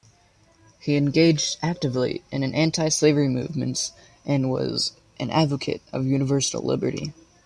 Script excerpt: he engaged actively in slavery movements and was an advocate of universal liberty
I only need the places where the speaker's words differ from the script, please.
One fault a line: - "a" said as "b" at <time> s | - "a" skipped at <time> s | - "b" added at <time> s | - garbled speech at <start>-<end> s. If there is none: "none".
- "anti" added at 2.4 s